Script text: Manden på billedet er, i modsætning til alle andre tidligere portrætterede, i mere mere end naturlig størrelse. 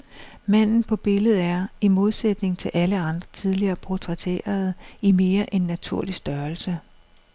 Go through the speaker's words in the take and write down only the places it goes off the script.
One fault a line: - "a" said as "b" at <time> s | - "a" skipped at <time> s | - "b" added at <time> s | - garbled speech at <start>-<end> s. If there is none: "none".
- "mere" skipped at 5.5 s